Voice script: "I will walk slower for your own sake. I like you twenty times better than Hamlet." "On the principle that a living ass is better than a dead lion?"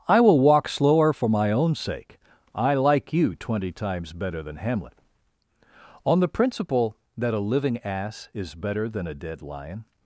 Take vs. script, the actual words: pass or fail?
fail